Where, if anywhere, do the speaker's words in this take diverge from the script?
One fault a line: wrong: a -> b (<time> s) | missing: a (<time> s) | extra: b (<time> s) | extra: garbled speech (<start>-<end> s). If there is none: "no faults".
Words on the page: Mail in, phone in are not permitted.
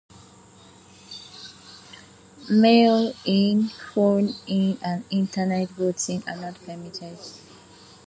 extra: and Internet voting (4.8 s)